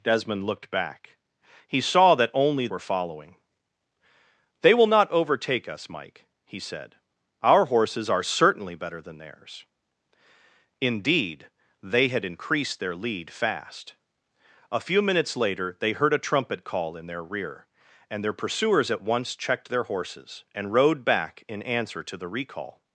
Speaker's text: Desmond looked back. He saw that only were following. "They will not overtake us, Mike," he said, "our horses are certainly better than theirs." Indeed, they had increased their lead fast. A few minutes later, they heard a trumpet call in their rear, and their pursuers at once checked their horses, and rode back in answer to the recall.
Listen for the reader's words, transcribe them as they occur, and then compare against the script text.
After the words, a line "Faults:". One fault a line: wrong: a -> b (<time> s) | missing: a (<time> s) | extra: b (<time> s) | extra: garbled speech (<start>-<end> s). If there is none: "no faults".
Desmond looked back. He saw that only were following. "They will not overtake us, Mike," he said, "our horses are certainly better than theirs." Indeed, they had increased their lead fast. A few minutes later, they heard a trumpet call in their rear, and their pursuers at once checked their horses, and rode back in answer to the recall.
Faults:
no faults